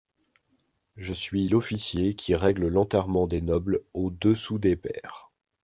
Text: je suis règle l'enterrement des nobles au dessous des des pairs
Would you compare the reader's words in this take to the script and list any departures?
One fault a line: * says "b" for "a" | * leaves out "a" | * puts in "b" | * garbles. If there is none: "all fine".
* puts in "l'officier qui"
* leaves out "des"